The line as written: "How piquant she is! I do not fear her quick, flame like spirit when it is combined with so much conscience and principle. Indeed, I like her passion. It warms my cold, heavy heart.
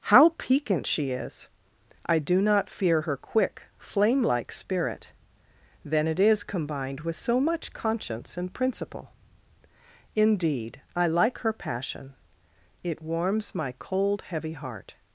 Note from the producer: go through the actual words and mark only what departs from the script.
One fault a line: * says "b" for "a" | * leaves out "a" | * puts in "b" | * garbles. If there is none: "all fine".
* says "then" for "when"